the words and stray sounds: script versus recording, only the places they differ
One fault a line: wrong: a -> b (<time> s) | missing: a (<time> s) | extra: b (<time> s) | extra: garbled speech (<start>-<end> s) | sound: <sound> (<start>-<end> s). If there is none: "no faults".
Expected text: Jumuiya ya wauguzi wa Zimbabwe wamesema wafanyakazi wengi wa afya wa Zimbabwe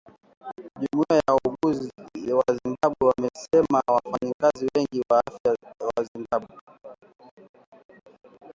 no faults